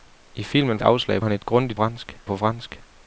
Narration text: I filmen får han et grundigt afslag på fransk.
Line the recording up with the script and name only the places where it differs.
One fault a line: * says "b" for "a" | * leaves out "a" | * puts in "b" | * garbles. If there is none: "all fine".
* says "afslag" for "får"
* says "fransk" for "afslag"